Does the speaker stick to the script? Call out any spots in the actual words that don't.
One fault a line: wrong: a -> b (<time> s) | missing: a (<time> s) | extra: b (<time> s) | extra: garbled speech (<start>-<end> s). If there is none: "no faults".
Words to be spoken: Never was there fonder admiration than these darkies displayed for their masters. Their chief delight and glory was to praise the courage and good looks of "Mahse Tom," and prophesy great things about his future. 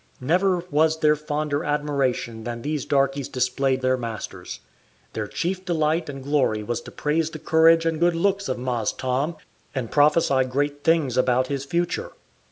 missing: for (3.8 s)